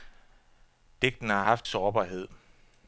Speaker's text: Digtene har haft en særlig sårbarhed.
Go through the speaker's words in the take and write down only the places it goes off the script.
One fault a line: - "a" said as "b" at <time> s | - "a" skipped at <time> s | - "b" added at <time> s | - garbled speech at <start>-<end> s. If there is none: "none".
- "en særlig" skipped at 1.6 s